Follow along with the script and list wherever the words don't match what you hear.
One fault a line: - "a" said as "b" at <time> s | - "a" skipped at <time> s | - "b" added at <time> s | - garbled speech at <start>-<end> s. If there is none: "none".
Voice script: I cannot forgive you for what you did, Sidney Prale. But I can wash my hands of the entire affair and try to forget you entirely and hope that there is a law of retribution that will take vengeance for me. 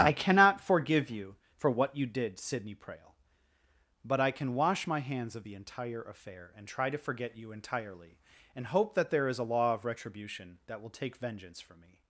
none